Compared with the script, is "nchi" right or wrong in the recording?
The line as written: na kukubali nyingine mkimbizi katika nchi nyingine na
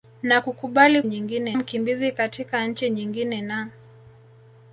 right